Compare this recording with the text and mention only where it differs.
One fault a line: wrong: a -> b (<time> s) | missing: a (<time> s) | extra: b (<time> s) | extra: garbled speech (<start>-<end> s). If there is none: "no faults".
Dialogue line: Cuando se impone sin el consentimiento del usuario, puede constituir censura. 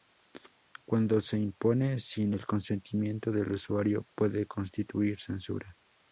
no faults